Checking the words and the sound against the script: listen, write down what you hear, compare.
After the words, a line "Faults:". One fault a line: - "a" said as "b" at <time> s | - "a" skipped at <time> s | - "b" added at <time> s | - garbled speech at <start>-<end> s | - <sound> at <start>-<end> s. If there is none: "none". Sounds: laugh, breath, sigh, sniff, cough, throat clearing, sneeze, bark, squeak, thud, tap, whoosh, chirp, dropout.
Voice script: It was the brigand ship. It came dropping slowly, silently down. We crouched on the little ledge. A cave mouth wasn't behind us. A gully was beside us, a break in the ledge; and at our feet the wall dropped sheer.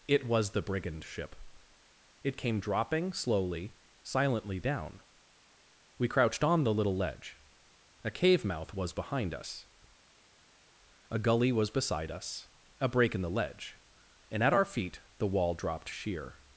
It was the brigand ship. It came dropping slowly, silently down. We crouched on the little ledge. A cave mouth was behind us. A gully was beside us, a break in the ledge; and at our feet the wall dropped sheer.
Faults:
- "wasn't" said as "was" at 8.7 s